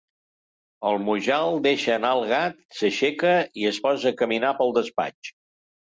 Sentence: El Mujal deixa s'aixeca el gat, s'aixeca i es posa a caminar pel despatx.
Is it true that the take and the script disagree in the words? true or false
true